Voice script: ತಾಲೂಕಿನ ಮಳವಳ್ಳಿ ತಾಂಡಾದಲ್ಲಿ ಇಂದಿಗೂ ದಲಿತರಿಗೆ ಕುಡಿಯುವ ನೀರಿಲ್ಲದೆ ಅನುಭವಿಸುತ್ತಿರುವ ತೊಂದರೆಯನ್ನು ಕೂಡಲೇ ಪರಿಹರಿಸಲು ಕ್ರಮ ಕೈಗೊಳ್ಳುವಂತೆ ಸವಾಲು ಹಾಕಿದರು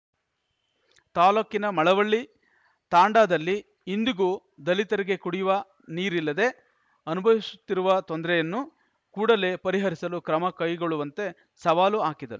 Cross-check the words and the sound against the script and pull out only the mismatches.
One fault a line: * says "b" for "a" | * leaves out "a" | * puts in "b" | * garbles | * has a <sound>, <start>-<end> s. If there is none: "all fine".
all fine